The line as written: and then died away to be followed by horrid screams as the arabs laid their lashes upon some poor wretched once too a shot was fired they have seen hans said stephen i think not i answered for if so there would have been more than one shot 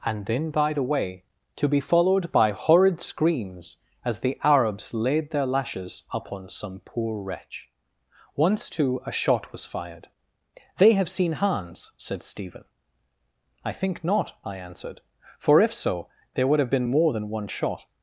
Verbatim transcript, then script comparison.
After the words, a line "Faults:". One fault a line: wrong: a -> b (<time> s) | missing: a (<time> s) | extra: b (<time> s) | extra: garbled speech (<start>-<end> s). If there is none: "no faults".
and then died away to be followed by horrid screams as the arabs laid their lashes upon some poor wretch once too a shot was fired they have seen hans said stephen i think not i answered for if so there would have been more than one shot
Faults:
wrong: wretched -> wretch (7.2 s)